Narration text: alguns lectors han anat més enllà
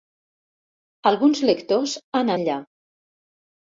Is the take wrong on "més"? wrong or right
wrong